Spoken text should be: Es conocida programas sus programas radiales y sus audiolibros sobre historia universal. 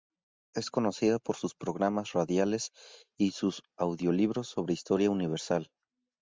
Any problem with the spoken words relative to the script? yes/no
yes